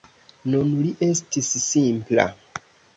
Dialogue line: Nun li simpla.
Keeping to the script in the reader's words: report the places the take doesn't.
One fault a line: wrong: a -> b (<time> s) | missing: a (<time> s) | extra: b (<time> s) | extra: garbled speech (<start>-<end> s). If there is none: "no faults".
extra: estis (1.1 s)